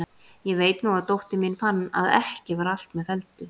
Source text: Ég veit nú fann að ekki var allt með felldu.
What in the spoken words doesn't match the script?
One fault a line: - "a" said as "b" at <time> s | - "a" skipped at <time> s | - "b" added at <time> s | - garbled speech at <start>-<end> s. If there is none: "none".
- "að dóttir mín" added at 0.9 s